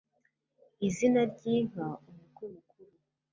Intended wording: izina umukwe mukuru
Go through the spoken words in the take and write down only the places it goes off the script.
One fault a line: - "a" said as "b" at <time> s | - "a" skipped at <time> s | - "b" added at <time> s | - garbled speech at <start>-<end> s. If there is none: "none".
- "ry'inka" added at 1.3 s